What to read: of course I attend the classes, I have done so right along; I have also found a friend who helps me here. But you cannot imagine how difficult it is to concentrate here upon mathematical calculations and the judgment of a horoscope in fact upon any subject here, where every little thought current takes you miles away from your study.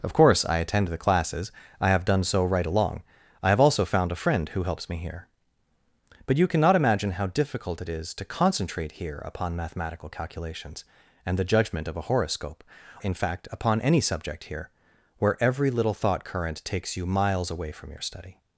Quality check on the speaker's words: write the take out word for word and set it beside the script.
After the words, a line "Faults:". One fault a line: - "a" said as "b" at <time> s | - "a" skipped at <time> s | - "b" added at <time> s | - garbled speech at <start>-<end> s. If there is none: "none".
of course I attend the classes, I have done so right along; I have also found a friend who helps me here. But you cannot imagine how difficult it is to concentrate here upon mathematical calculations and the judgment of a horoscope in fact upon any subject here, where every little thought current takes you miles away from your study.
Faults:
none